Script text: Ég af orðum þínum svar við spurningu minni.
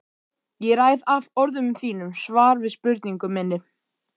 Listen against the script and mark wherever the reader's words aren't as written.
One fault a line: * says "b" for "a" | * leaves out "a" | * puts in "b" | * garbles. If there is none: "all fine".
* puts in "ræð"